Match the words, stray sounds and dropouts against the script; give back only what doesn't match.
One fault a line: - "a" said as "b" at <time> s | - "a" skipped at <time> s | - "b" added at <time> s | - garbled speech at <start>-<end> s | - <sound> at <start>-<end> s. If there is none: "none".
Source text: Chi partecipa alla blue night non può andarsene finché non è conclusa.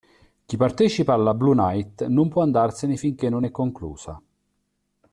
none